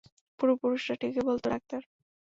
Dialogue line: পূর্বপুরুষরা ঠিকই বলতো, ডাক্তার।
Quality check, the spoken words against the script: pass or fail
pass